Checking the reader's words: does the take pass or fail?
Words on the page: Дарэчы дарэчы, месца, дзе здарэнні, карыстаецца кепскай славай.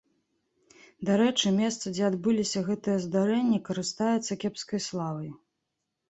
fail